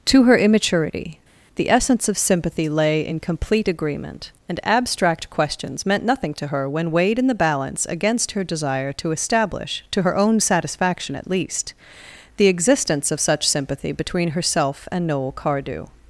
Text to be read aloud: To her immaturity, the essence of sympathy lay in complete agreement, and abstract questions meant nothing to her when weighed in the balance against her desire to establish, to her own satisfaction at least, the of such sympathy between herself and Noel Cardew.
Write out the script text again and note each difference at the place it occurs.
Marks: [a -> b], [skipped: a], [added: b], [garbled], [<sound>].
To her immaturity, the essence of sympathy lay in complete agreement, and abstract questions meant nothing to her when weighed in the balance against her desire to establish, to her own satisfaction at least, the [added: existence] of such sympathy between herself and Noel Cardew.